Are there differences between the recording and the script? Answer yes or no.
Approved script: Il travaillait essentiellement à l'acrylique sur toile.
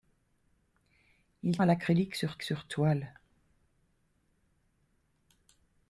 yes